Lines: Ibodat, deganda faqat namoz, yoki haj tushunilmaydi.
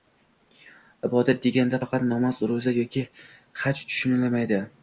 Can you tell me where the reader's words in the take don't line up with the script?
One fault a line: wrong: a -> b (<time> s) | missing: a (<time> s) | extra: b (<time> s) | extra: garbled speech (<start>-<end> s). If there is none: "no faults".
extra: ro‘za (2.5 s)